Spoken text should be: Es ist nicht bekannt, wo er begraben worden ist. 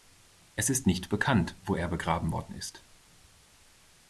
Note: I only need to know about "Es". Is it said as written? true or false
true